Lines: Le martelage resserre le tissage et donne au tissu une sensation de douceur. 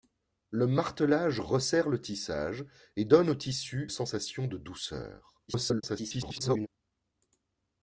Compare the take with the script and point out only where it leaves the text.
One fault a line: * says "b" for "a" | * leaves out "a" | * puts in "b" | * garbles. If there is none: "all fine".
* leaves out "une"
* garbles